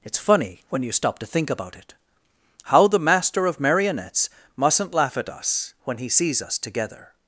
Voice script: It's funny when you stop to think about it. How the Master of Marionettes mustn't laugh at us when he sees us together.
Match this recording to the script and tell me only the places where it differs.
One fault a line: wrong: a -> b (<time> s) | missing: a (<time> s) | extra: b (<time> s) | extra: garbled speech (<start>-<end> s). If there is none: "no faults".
no faults